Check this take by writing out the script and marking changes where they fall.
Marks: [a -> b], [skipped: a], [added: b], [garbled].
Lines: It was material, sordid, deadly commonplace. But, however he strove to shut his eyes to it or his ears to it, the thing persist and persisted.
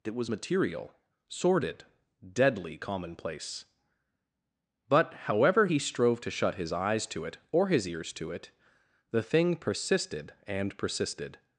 It was material, sordid, deadly commonplace. But, however he strove to shut his eyes to it or his ears to it, the thing [persist -> persisted] and persisted.